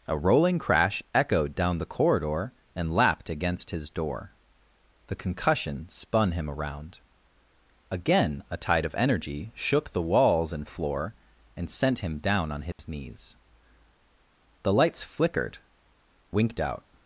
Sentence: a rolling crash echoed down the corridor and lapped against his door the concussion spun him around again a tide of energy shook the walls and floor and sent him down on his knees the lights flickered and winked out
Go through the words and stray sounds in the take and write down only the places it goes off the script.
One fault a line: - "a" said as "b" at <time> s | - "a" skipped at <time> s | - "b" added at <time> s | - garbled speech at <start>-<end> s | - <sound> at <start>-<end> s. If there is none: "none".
- dropout at 12.7-12.8 s
- "and" skipped at 15.6 s